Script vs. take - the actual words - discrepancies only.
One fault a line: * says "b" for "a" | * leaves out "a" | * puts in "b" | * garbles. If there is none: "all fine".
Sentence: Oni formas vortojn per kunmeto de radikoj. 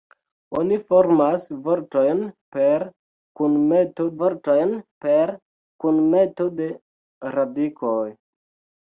* puts in "vortojn per kunmeto"